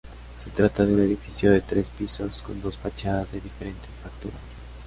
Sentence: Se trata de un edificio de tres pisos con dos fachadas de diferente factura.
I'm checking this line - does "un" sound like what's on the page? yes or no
no